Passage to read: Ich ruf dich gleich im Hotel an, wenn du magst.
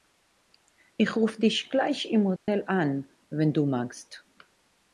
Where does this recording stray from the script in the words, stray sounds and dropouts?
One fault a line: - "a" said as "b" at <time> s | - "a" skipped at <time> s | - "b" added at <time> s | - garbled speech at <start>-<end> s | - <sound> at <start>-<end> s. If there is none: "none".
- dropout at 2.4-2.5 s